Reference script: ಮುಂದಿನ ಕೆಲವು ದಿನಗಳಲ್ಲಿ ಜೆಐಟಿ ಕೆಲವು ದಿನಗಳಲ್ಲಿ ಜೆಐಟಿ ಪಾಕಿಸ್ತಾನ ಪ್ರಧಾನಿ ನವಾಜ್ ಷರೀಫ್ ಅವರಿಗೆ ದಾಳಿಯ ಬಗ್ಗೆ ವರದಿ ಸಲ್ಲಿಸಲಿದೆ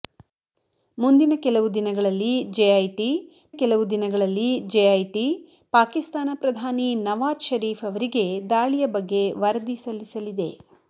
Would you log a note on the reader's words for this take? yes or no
no